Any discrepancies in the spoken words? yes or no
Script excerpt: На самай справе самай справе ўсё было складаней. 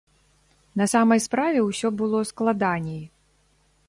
yes